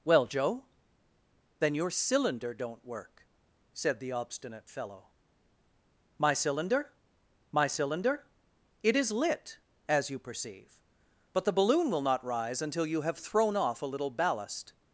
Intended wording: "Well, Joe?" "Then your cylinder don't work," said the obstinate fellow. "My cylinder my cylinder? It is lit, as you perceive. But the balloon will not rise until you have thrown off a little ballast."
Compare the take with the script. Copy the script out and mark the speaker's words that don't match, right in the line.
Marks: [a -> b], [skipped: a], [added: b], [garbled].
"Well, Joe?" "Then your cylinder don't work," said the obstinate fellow. "My cylinder my cylinder? It is lit, as you perceive. But the balloon will not rise until you have thrown off a little ballast."